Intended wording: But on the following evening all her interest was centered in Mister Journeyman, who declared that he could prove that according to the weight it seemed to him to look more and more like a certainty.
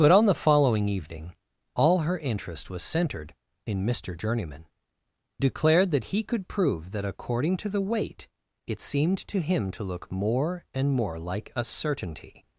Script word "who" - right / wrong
wrong